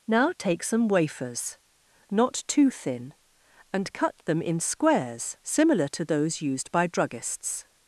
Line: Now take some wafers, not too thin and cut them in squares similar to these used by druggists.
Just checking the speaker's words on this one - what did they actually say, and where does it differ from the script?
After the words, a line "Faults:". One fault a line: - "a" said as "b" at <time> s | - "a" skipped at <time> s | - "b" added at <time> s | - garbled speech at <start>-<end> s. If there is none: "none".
Now take some wafers, not too thin and cut them in squares similar to those used by druggists.
Faults:
- "these" said as "those" at 6.0 s